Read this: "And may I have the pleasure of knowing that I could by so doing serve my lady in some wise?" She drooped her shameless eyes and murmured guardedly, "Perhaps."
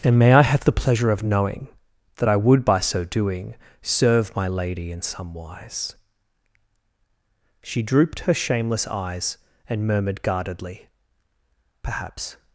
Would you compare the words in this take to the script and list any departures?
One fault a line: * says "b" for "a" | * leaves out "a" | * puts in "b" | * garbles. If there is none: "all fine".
* says "would" for "could"